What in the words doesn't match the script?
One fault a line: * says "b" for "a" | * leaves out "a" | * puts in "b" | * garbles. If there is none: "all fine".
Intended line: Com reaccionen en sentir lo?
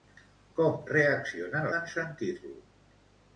all fine